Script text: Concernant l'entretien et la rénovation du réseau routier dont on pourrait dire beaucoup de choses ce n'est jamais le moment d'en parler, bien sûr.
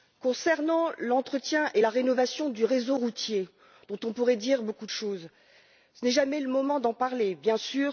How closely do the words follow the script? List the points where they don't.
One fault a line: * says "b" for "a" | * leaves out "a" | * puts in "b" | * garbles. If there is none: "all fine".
all fine